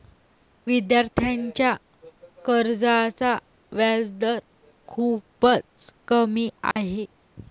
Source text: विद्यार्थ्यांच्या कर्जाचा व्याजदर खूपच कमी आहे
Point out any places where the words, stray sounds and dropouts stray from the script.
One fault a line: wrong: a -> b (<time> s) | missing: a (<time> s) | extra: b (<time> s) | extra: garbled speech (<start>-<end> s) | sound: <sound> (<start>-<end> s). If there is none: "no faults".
sound: dropout (6.7-6.8 s)